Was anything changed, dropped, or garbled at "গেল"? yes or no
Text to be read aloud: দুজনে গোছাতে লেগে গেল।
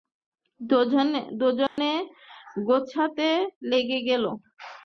no